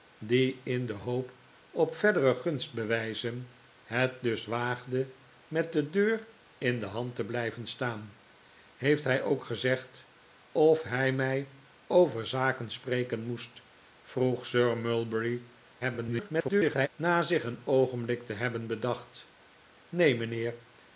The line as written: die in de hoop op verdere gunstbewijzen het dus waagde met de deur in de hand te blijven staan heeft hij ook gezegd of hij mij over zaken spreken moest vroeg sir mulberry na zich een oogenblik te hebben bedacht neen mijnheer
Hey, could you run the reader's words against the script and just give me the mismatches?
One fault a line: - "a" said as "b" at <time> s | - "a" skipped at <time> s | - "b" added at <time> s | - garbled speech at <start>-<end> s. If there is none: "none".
- garbled speech at 15.8-16.9 s